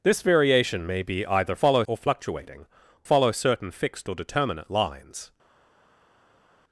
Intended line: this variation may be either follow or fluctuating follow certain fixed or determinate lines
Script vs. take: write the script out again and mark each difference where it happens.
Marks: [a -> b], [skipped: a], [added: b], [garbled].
this variation may be either follow or fluctuating follow certain fixed or determinate lines